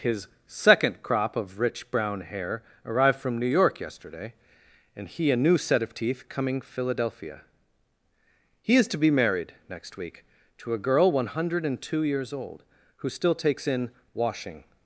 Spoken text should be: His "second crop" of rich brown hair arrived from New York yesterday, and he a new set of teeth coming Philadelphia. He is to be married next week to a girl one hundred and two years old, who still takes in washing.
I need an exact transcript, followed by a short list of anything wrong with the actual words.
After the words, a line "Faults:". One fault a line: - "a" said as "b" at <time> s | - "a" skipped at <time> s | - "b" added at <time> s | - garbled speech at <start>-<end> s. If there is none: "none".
His "second crop" of rich brown hair arrived from New York yesterday, and he a new set of teeth coming Philadelphia. He is to be married next week to a girl one hundred and two years old, who still takes in washing.
Faults:
none